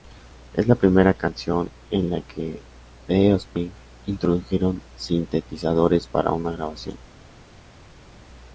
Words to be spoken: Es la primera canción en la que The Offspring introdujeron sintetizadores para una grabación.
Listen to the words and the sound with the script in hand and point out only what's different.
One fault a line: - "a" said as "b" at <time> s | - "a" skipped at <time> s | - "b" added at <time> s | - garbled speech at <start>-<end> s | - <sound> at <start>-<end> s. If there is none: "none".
none